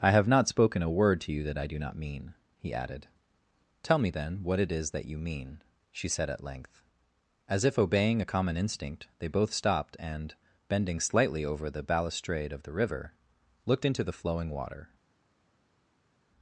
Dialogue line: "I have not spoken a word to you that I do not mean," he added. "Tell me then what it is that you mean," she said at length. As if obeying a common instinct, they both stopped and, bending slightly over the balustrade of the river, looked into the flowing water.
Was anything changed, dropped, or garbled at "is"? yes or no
no